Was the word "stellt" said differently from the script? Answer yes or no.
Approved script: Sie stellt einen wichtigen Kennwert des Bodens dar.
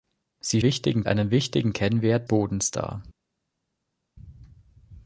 yes